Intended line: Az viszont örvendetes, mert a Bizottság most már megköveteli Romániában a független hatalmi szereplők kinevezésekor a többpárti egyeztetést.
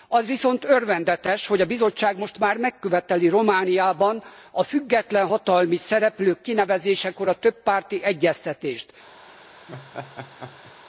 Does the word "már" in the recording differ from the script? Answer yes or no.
no